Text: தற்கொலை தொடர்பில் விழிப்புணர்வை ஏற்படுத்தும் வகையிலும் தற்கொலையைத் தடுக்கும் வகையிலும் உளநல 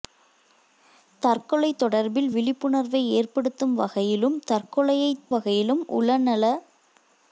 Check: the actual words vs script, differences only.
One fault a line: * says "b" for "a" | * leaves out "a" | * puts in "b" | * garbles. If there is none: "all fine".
* leaves out "தடுக்கும்"